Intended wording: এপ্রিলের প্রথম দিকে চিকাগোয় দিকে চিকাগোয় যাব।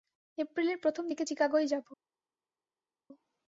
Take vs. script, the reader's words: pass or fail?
fail